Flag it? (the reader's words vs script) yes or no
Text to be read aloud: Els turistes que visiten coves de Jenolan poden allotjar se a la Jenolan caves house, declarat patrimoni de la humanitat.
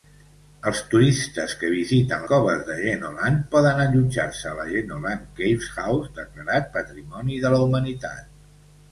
no